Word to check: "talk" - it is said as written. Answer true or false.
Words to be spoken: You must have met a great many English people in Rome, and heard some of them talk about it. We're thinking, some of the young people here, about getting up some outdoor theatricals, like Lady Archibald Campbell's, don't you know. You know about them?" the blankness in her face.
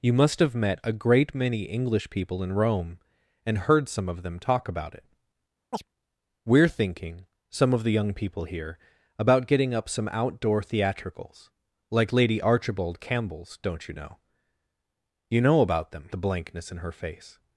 true